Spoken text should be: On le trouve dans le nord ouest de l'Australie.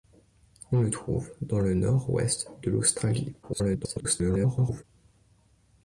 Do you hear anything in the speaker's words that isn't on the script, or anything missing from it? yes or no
yes